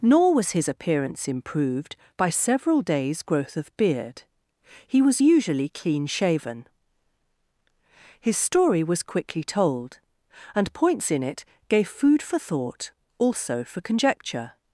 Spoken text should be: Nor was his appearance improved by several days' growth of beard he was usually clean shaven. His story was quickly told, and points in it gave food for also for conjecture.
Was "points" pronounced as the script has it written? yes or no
yes